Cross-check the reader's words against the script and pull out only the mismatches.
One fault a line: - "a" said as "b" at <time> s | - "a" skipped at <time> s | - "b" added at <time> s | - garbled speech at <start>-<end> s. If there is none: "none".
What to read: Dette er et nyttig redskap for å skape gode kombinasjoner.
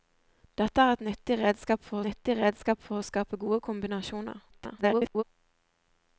- "nyttig redskap for" added at 2.1 s
- garbled speech at 4.5-5.2 s